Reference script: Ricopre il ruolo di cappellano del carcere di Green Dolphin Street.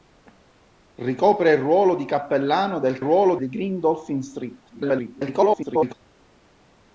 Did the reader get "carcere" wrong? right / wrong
wrong